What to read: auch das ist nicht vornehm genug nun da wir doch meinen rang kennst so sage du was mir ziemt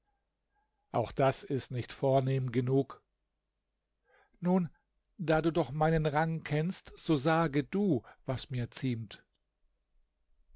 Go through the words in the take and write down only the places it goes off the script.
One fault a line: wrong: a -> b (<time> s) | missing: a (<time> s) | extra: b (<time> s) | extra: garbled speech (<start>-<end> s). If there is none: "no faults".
wrong: wir -> du (5.4 s)